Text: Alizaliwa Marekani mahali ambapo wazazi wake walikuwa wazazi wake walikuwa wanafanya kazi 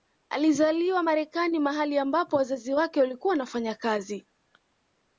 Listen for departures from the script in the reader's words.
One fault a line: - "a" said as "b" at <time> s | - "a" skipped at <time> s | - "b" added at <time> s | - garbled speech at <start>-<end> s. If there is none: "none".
- "wazazi wake walikuwa" skipped at 3.3 s